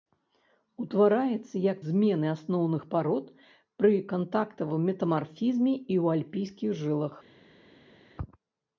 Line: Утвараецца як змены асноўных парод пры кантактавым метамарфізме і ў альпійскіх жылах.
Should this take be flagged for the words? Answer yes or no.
no